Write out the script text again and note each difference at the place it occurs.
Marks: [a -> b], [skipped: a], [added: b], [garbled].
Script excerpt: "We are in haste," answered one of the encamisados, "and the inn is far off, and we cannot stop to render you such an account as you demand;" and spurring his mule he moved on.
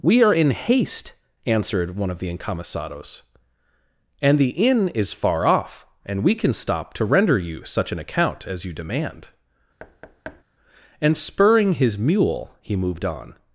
"We are in haste," answered one of the encamisados, "and the inn is far off, and we [cannot -> can] stop to render you such an account as you demand;" and spurring his mule he moved on.